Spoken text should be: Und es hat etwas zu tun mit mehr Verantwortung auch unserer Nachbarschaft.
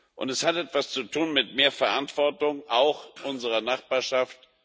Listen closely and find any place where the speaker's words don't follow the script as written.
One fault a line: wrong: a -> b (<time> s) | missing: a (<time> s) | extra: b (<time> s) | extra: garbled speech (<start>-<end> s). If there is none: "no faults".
no faults